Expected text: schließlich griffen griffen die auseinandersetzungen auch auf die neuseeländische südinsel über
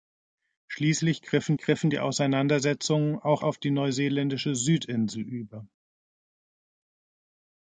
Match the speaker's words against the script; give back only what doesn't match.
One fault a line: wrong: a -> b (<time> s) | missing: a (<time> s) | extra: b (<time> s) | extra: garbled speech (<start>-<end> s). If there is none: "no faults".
no faults